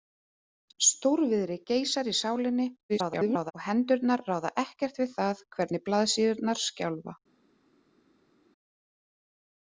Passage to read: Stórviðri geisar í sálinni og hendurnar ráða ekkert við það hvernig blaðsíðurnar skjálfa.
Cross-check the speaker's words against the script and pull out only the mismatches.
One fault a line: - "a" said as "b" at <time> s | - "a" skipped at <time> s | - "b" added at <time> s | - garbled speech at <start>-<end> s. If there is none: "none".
- garbled speech at 2.9-3.5 s